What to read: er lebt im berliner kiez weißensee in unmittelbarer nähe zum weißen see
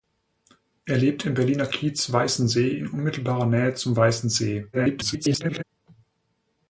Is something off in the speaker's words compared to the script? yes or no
yes